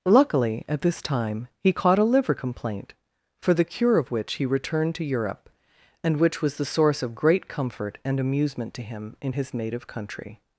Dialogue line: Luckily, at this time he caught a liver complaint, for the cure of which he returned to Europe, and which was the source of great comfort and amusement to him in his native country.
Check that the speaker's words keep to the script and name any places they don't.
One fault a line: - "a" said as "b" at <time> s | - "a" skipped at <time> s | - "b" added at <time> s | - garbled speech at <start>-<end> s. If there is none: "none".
none